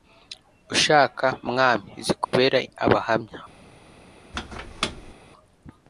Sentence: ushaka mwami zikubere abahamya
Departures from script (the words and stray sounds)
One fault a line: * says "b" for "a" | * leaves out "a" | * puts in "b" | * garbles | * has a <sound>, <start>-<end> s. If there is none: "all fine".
* has a dropout, 2.2-2.3 s
* has a squeak, 4.3-5.1 s